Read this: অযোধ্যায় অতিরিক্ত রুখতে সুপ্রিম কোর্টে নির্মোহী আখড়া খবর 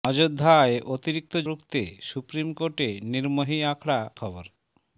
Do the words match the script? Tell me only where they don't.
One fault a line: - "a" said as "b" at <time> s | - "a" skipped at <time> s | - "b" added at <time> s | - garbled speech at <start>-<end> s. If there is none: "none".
none